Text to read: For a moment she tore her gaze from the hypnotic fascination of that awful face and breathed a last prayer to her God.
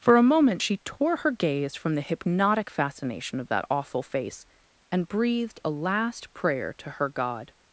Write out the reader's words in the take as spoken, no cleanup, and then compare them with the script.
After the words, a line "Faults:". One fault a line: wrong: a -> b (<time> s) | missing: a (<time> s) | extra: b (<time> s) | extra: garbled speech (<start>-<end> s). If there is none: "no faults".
For a moment she tore her gaze from the hypnotic fascination of that awful face and breathed a last prayer to her God.
Faults:
no faults